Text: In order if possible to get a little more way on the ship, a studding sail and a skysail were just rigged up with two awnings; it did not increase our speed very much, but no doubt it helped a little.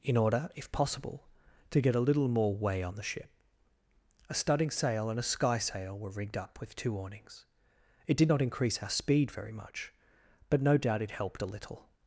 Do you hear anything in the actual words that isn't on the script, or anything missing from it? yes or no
yes